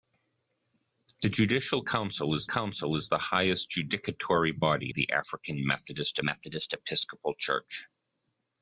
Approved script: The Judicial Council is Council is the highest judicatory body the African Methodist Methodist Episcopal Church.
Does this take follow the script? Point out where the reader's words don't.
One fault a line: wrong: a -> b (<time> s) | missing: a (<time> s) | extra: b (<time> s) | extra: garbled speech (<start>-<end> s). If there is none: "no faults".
no faults